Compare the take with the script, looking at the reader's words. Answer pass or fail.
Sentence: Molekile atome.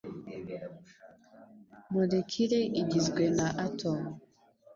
fail